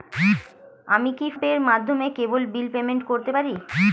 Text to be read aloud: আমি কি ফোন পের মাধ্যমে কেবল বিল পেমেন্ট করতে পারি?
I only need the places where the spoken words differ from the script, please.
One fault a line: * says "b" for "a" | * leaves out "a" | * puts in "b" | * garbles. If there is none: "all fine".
* leaves out "ফোন"